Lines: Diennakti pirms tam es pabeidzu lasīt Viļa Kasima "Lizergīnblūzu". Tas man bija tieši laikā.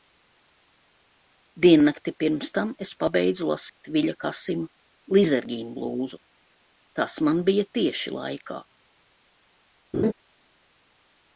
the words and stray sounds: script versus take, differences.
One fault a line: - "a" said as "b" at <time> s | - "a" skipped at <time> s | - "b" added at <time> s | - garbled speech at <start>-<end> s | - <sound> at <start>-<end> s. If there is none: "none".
- dropout at 3.7-3.8 s
- laugh at 9.9-10.1 s